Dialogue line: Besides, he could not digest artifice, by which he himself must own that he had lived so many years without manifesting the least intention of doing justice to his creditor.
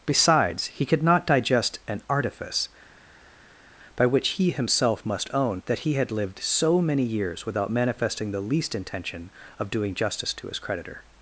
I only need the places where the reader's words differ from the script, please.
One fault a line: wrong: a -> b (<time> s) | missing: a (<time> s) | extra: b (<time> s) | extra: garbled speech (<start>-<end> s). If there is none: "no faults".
extra: an (1.9 s)